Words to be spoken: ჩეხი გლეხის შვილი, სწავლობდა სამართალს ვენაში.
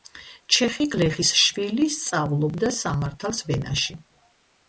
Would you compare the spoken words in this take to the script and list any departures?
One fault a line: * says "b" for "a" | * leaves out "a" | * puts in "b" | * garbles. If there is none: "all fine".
all fine